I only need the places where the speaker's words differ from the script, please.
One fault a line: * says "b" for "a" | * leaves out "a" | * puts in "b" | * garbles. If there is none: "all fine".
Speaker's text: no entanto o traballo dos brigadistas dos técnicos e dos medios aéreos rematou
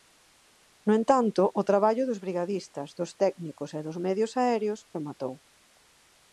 all fine